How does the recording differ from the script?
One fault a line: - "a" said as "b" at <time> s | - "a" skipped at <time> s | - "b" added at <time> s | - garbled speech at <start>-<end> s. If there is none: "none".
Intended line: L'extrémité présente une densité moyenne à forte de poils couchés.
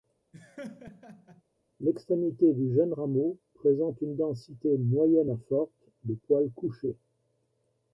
- "du jeune rameau" added at 2.5 s